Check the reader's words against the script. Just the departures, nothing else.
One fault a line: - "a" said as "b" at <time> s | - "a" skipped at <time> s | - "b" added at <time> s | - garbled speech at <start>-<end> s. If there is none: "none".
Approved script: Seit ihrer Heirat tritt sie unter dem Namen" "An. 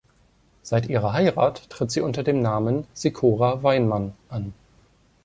- "Sikora Weinmann" added at 2.9 s